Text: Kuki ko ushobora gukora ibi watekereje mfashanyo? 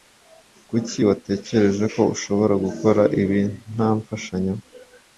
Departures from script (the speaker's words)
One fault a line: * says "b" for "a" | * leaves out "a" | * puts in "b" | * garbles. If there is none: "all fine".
* puts in "watekereje"
* says "nta" for "watekereje"